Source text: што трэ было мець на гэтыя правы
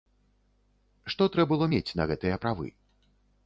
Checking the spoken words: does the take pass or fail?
pass